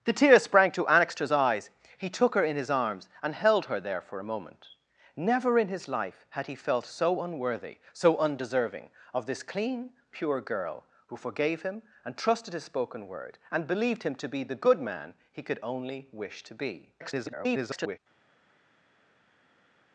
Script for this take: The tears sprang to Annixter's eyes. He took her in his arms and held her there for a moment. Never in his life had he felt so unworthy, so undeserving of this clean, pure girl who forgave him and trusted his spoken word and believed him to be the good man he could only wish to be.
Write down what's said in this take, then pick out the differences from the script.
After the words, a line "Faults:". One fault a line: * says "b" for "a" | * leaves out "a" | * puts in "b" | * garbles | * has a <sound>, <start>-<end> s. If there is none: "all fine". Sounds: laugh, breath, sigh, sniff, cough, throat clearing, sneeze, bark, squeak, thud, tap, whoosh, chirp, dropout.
The tears sprang to Annixter's eyes. He took her in his arms and held her there for a moment. Never in his life had he felt so unworthy, so undeserving of this clean, pure girl who forgave him and trusted his spoken word and believed him to be the good man he could only wish to be. [garbled]
Faults:
* garbles